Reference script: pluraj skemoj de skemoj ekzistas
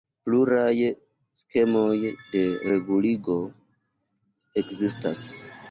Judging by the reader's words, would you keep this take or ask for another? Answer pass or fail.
fail